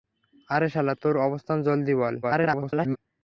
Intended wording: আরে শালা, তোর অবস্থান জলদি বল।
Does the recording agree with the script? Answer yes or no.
no